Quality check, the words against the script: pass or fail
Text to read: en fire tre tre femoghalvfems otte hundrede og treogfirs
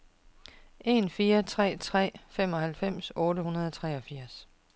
pass